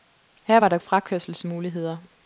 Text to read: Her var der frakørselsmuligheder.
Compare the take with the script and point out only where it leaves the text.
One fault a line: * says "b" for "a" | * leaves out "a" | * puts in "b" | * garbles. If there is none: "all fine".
all fine